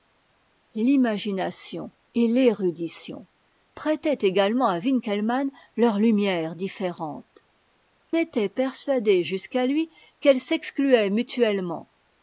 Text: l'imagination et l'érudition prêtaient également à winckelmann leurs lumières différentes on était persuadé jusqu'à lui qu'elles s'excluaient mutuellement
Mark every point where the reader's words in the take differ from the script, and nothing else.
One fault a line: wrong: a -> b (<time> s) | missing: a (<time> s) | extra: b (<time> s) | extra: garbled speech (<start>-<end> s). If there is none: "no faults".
missing: on (7.5 s)